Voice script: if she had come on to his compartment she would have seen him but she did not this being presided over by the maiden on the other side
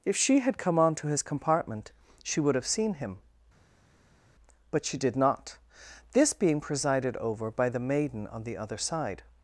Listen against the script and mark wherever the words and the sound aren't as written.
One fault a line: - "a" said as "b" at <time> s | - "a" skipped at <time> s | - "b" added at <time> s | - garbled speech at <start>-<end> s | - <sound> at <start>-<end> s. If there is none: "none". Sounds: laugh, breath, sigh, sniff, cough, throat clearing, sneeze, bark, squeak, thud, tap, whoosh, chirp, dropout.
none